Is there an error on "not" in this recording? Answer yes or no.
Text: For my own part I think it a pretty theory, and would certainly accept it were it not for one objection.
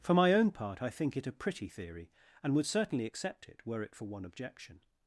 yes